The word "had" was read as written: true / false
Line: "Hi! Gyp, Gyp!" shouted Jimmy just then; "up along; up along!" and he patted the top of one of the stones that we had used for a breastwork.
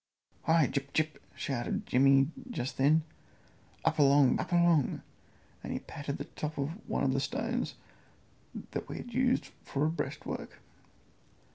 true